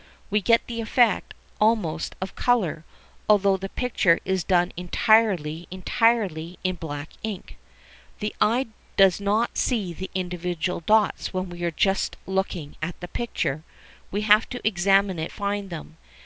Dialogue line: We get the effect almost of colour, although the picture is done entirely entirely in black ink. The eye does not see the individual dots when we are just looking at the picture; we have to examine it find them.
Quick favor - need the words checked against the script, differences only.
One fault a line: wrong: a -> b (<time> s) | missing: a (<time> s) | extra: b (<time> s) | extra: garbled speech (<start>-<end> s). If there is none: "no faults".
no faults